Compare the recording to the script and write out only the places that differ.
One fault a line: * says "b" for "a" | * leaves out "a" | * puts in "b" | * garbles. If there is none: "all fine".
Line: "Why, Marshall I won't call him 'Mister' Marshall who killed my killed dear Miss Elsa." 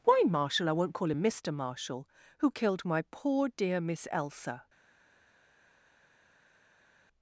* says "poor" for "killed"